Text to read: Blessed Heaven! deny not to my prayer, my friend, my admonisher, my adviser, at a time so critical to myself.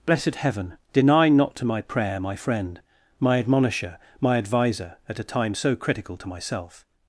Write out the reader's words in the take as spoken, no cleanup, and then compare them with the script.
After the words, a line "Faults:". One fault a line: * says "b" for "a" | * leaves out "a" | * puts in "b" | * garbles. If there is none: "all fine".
Blessed Heaven! deny not to my prayer, my friend, my admonisher, my adviser, at a time so critical to myself.
Faults:
all fine